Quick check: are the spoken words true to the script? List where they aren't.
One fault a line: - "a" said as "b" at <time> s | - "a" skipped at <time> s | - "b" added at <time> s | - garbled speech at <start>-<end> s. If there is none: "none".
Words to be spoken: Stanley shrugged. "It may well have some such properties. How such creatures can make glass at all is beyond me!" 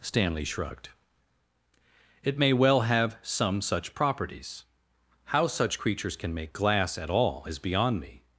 none